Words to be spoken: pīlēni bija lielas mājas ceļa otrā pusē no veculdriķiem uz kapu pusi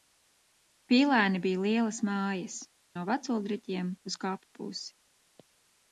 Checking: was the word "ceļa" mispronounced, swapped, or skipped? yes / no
yes